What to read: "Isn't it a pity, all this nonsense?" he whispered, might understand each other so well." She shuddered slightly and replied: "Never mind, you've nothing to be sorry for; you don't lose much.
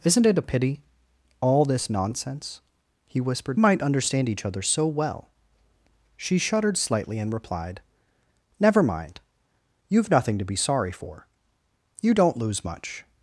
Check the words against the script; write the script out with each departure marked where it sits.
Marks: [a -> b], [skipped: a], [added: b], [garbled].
"Isn't it a pity, all this nonsense?" he whispered, might understand each other so well." She shuddered slightly and replied: "Never mind, you've nothing to be sorry for; you don't lose much.